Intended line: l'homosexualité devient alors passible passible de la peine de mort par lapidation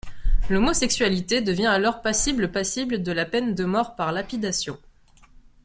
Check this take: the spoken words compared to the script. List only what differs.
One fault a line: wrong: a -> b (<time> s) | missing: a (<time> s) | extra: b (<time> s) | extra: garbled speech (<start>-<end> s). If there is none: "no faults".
no faults